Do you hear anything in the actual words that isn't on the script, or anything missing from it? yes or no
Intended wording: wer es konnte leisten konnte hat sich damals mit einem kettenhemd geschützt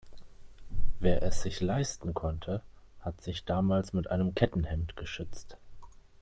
yes